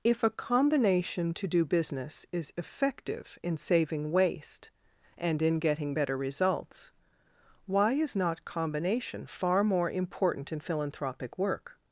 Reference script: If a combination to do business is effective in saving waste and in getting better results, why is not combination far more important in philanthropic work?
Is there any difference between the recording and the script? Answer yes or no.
no